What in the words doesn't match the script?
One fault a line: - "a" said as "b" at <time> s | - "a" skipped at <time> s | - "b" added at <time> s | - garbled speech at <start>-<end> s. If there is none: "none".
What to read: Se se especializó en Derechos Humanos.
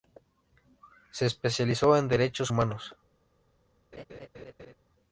- "se" skipped at 1.3 s